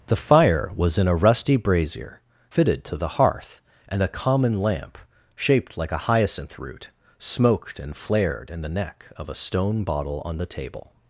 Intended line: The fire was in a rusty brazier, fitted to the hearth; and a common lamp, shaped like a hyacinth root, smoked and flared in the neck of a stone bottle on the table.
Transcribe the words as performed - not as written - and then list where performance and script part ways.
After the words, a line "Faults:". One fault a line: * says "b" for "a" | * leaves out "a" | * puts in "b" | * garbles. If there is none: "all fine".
The fire was in a rusty brazier, fitted to the hearth; and a common lamp, shaped like a hyacinth root, smoked and flared in the neck of a stone bottle on the table.
Faults:
all fine